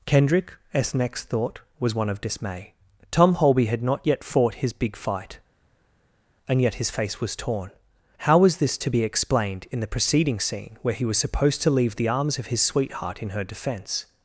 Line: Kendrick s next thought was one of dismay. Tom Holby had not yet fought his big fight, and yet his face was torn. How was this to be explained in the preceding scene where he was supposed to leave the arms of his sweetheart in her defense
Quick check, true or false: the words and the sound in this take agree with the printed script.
true